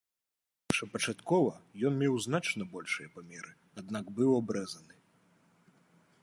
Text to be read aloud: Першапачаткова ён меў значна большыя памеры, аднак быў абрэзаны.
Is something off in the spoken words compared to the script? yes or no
no